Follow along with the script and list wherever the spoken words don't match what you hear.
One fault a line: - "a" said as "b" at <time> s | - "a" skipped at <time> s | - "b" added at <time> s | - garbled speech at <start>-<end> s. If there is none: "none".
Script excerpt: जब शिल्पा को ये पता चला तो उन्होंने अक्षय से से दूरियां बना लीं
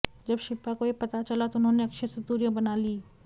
- "से" skipped at 2.2 s